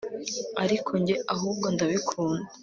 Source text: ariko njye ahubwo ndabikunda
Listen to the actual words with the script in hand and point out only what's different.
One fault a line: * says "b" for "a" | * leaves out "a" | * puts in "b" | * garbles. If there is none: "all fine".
all fine